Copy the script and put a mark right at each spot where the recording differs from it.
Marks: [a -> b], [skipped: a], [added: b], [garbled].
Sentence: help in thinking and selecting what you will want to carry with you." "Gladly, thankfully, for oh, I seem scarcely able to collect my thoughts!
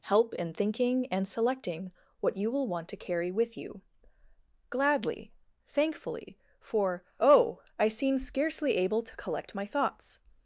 help in thinking and selecting what you will want to carry with you." "Gladly, thankfully, for oh, I seem scarcely able to collect my thoughts!